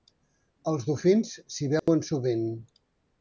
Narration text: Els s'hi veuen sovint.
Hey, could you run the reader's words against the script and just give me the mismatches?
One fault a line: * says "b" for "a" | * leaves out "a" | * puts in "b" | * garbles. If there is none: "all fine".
* puts in "dofins"